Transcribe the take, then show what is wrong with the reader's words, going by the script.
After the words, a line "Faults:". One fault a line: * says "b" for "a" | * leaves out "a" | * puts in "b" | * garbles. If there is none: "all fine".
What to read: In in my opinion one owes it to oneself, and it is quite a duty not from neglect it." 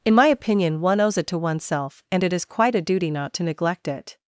In my opinion one owes it to oneself, and it is quite a duty not to neglect it."
Faults:
* leaves out "in"
* says "to" for "from"